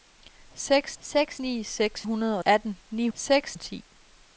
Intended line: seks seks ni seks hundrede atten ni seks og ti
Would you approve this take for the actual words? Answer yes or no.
yes